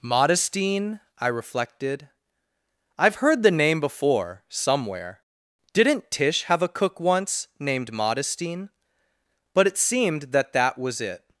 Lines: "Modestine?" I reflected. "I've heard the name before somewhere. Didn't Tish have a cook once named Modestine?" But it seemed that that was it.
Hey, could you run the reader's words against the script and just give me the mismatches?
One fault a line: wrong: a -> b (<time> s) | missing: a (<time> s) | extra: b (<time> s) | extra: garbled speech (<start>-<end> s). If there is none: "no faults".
no faults